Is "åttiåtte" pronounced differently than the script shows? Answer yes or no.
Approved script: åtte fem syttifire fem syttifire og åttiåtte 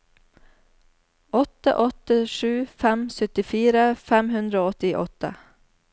no